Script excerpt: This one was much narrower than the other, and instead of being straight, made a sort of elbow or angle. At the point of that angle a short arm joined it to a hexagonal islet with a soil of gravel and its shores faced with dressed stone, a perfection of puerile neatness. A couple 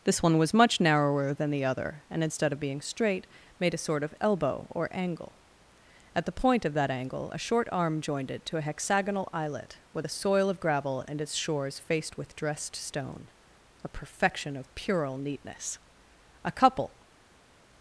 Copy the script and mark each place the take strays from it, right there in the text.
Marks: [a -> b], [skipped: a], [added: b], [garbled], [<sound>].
This one was much narrower than the other, and instead of being straight, made a sort of elbow or angle. At the point of that angle a short arm joined it to a hexagonal islet with a soil of gravel and its shores faced with dressed stone, a perfection of puerile neatness. A couple